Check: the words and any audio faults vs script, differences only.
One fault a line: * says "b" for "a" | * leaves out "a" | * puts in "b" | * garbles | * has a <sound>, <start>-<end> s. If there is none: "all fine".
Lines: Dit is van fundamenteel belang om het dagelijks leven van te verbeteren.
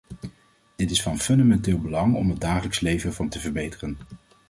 all fine